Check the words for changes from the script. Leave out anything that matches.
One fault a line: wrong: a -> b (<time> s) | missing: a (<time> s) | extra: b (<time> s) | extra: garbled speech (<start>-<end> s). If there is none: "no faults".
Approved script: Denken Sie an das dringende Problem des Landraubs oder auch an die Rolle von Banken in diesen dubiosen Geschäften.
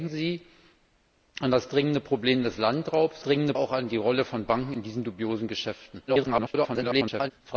wrong: oder -> dringende (3.2 s)
extra: garbled speech (6.1-7.3 s)